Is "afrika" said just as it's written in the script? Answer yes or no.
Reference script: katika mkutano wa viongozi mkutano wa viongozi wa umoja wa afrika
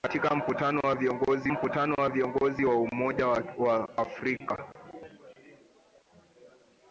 yes